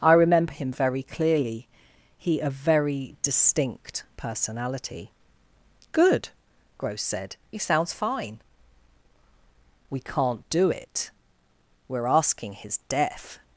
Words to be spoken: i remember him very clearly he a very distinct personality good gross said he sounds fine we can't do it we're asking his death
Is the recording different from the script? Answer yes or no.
no